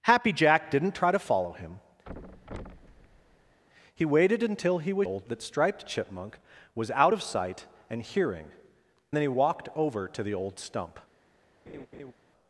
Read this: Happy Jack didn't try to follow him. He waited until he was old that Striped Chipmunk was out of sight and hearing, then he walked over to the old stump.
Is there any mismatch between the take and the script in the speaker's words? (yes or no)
no